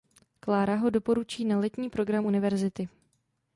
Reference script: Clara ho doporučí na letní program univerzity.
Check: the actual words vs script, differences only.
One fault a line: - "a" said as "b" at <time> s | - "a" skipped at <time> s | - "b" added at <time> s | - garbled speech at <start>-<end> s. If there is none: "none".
none